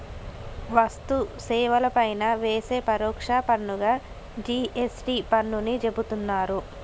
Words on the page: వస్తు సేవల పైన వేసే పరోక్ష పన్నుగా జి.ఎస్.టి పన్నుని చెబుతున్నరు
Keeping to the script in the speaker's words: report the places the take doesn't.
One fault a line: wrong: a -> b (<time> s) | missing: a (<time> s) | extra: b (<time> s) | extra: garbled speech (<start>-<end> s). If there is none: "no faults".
no faults